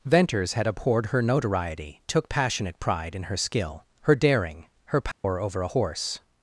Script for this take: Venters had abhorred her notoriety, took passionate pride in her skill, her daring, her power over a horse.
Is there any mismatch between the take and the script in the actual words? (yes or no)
no